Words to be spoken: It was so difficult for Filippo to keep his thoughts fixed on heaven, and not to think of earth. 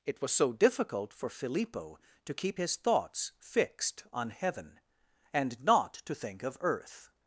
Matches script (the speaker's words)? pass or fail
pass